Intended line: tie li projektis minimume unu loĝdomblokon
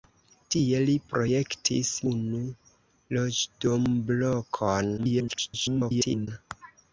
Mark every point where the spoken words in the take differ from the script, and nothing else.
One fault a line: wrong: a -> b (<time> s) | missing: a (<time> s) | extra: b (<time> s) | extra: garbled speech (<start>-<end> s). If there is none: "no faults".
missing: minimume (1.9 s)
extra: garbled speech (5.0-6.3 s)